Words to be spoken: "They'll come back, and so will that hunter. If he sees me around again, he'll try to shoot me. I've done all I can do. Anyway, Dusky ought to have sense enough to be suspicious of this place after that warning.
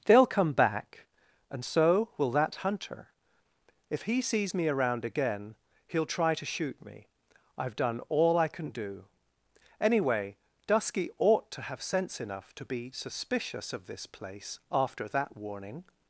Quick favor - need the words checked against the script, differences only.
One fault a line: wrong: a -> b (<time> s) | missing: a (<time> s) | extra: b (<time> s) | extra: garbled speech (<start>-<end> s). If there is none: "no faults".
no faults